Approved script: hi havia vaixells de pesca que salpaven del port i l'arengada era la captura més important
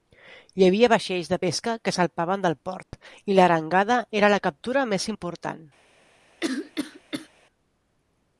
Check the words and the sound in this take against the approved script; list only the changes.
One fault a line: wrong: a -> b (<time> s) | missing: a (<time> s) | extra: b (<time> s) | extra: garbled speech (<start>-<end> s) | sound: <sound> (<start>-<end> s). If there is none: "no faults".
sound: dropout (2.8-2.9 s)
sound: cough (6.4-7.3 s)